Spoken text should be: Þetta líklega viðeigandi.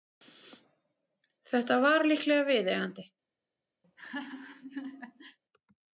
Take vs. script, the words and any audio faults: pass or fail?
fail